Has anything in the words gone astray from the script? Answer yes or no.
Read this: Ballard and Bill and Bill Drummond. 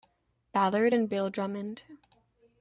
yes